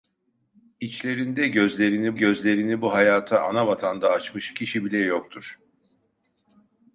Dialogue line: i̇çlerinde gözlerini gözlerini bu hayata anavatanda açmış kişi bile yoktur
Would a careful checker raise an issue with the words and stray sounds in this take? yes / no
no